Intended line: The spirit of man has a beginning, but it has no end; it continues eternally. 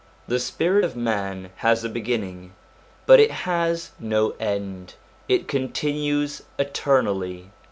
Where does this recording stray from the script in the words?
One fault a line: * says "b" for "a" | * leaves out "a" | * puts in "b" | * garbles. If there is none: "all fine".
all fine